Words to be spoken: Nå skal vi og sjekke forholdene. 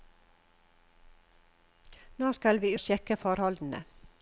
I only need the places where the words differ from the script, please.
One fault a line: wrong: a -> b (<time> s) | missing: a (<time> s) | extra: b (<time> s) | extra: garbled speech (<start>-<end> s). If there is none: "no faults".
no faults